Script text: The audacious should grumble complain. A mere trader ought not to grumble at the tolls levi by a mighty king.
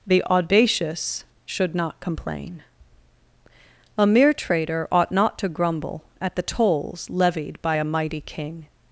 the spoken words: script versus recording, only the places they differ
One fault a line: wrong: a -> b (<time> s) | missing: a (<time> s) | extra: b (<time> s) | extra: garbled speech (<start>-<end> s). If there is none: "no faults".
wrong: grumble -> not (1.7 s)
wrong: levi -> levied (7.1 s)